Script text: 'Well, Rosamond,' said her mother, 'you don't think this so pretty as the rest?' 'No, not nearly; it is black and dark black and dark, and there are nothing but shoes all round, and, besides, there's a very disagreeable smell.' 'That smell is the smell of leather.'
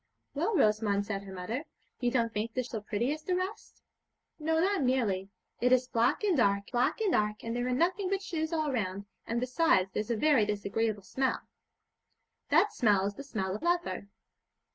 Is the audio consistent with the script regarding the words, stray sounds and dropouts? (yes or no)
yes